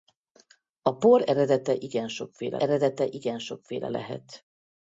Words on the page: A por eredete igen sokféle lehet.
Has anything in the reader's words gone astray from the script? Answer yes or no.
yes